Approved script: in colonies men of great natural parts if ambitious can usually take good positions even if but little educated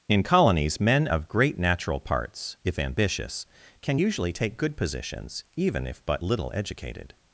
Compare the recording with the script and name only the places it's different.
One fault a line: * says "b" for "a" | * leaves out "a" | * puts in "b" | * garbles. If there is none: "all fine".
all fine